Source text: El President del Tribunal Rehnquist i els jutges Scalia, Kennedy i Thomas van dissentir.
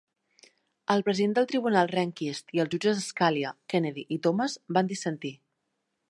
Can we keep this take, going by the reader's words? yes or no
yes